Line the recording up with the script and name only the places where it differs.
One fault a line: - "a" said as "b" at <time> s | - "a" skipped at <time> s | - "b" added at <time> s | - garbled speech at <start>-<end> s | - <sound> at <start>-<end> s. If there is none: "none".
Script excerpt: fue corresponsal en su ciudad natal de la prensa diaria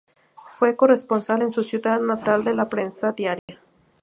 - dropout at 3.4-3.5 s